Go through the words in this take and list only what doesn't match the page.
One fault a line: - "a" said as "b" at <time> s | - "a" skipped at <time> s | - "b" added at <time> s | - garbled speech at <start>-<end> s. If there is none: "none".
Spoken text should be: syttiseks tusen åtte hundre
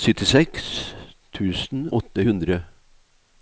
none